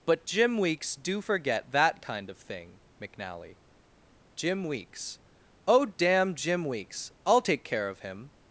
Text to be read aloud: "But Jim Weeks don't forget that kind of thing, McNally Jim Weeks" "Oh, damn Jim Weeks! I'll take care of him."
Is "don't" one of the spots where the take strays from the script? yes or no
yes